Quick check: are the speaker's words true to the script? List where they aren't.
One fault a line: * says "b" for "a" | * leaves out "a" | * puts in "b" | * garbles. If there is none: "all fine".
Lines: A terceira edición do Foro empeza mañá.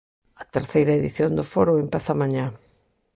all fine